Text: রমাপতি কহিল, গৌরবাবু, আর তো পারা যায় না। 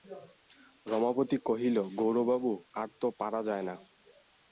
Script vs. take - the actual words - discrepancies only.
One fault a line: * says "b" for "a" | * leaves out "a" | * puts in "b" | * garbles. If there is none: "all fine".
all fine